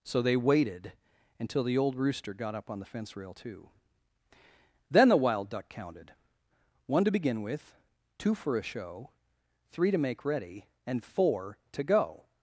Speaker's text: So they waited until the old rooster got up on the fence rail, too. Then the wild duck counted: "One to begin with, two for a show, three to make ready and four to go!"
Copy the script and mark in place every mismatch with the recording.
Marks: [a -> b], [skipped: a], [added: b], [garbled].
So they waited until the old rooster got up on the fence rail, too. Then the wild duck counted: "One to begin with, two for a show, three to make ready and four to go!"